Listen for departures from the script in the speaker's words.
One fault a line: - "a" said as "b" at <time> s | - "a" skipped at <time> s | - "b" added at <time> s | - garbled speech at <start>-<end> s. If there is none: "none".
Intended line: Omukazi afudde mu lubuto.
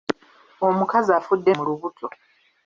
none